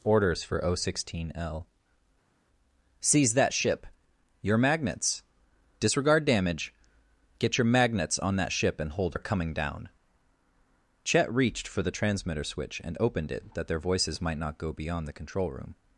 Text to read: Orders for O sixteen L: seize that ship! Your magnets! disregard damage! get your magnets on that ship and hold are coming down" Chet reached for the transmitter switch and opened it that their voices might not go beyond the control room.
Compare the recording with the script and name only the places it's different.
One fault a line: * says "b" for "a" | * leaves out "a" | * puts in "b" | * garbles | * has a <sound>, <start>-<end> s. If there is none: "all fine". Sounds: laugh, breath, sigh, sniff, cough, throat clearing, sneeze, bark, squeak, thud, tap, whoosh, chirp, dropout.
all fine